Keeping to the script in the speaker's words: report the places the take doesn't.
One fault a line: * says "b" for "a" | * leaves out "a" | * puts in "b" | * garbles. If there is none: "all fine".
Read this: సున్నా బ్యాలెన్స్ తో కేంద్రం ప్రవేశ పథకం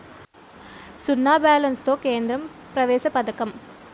all fine